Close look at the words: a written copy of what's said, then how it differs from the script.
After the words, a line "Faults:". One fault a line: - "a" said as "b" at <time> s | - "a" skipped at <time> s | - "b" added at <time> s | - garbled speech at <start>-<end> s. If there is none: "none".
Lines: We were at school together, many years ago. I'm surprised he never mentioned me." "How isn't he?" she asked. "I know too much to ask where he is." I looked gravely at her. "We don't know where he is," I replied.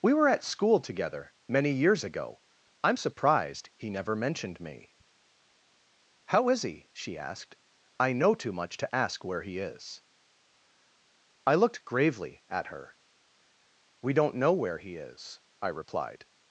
We were at school together, many years ago. I'm surprised he never mentioned me." "How is he?" she asked. "I know too much to ask where he is." I looked gravely at her. "We don't know where he is," I replied.
Faults:
- "isn't" said as "is" at 6.5 s